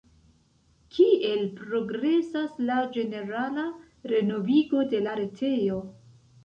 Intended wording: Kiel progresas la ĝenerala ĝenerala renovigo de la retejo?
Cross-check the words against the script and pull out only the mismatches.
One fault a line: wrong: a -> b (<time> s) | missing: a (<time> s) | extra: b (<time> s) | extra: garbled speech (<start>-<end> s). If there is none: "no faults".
missing: ĝenerala (3.7 s)